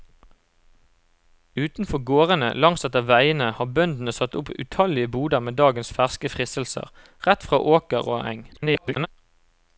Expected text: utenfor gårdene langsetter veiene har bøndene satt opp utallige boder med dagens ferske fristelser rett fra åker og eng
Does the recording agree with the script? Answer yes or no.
no